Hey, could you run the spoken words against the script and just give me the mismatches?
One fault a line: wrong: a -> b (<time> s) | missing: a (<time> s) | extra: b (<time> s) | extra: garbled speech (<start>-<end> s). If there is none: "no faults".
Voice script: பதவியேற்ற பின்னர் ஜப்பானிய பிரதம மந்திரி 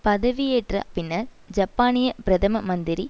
no faults